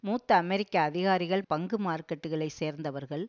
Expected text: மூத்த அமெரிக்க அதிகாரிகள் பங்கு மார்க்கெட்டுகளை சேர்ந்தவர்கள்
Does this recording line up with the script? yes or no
yes